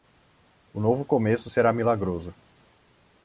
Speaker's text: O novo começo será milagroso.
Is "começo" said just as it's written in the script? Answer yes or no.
yes